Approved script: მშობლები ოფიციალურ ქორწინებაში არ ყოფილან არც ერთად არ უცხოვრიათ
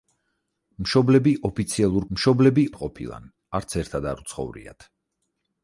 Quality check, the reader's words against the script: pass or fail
fail